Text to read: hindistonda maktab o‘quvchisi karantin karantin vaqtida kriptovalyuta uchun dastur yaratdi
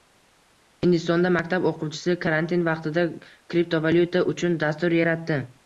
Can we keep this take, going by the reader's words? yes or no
no